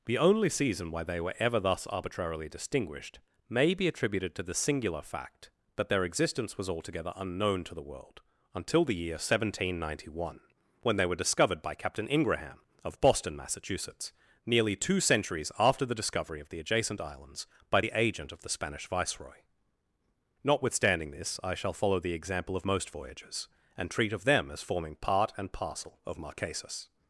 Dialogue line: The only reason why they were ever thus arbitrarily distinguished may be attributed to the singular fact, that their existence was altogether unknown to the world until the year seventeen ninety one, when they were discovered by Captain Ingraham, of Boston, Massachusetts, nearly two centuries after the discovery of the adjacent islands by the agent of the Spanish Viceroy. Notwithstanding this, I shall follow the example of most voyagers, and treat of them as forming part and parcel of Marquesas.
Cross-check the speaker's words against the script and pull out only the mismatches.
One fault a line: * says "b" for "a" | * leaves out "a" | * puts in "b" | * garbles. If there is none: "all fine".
* says "season" for "reason"